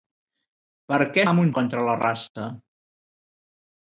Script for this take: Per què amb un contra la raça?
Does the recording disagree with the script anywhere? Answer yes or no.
no